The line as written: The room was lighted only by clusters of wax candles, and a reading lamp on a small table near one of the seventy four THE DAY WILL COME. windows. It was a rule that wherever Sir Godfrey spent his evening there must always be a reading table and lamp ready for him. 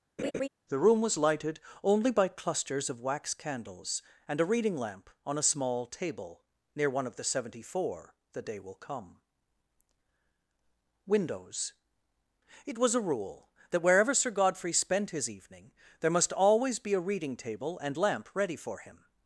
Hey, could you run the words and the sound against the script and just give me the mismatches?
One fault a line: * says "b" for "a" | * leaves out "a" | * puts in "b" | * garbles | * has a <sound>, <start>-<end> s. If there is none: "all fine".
* has a laugh, 0.2-0.5 s